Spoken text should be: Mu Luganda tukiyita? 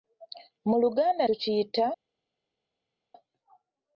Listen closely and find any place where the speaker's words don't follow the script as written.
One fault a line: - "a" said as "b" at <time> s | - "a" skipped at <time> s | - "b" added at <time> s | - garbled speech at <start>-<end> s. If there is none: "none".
none